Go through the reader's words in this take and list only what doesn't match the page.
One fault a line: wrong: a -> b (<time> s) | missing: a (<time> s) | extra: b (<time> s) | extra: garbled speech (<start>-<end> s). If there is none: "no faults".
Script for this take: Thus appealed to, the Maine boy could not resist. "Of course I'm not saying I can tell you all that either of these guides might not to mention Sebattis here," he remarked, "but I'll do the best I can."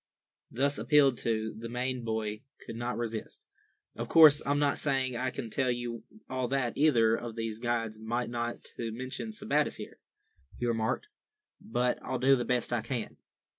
no faults